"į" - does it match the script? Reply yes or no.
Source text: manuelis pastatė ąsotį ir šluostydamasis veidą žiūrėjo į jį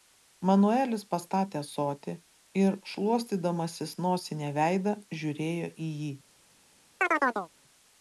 yes